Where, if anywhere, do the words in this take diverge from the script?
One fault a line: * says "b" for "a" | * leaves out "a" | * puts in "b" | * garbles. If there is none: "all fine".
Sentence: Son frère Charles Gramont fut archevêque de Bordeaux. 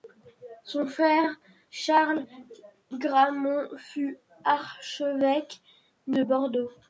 all fine